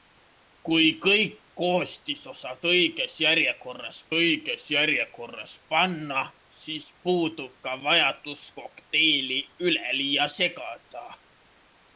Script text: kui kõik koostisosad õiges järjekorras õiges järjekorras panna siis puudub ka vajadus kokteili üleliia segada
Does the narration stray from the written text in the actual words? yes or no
no